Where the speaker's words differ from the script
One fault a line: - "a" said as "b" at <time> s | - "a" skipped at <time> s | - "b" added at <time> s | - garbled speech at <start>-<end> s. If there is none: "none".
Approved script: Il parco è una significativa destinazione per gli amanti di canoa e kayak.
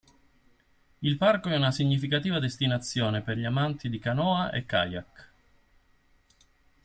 none